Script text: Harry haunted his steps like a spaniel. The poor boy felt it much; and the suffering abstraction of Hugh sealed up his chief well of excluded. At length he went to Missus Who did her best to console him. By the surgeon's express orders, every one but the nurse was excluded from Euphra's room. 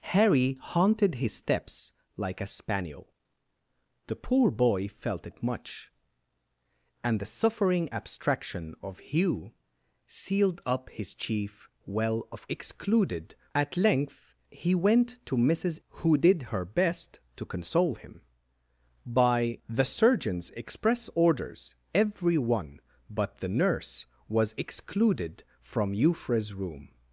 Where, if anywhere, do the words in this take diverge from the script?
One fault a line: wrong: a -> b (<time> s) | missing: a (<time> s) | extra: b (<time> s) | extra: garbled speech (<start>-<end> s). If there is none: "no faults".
no faults